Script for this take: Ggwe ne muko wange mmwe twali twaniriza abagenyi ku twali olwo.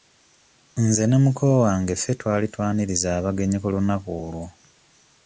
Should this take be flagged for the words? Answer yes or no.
yes